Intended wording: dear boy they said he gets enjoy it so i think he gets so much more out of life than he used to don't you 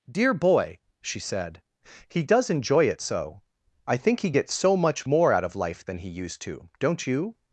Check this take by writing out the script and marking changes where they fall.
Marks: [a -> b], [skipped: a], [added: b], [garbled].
dear boy [they -> she] said he [gets -> does] enjoy it so i think he gets so much more out of life than he used to don't you